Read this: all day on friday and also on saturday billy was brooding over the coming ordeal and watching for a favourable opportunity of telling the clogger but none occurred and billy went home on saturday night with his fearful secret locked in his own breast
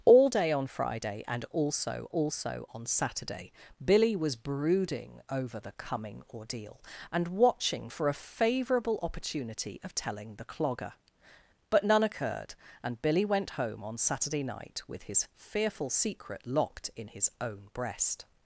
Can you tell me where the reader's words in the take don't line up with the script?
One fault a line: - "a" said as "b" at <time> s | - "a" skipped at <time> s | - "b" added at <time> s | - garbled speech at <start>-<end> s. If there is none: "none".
- "also" added at 2.1 s